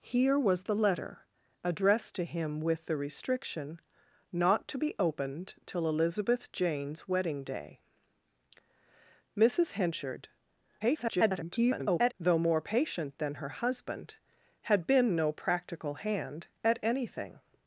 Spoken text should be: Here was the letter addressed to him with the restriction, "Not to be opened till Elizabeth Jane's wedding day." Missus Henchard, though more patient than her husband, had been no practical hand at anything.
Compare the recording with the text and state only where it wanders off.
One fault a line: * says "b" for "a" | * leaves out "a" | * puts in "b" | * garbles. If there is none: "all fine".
* garbles